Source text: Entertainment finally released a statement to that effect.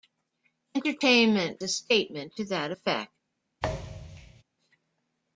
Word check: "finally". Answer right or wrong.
wrong